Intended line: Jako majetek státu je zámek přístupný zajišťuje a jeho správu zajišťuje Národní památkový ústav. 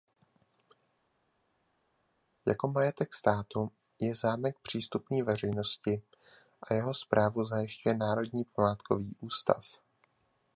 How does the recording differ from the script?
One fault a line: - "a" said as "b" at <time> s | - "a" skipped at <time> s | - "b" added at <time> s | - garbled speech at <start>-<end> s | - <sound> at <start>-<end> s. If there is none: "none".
- "zajišťuje" said as "veřejnosti" at 5.2 s